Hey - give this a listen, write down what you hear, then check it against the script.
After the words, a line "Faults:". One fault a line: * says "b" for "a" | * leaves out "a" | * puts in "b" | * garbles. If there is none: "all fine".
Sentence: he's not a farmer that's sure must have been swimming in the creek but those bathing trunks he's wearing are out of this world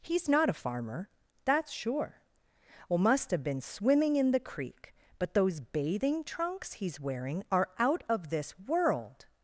he's not a farmer that's sure well must have been swimming in the creek but those bathing trunks he's wearing are out of this world
Faults:
* puts in "well"